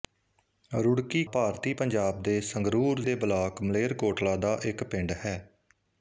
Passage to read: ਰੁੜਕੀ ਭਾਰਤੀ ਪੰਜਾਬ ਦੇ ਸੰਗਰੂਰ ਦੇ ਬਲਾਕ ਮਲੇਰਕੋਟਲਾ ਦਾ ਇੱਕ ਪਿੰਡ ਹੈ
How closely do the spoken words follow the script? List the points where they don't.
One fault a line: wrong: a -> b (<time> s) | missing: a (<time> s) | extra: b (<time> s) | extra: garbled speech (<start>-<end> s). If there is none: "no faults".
no faults